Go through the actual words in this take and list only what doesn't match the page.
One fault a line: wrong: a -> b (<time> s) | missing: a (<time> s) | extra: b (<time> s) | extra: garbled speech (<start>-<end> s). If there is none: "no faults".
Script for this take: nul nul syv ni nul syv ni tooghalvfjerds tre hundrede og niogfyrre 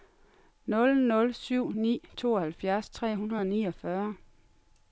missing: nul syv ni (1.9 s)